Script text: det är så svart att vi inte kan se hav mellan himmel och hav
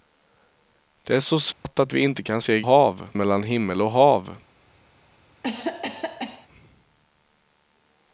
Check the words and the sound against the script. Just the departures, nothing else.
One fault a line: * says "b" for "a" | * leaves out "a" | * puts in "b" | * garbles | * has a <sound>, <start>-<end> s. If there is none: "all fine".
* has a dropout, 1.5-1.6 s
* has a cough, 5.4-6.5 s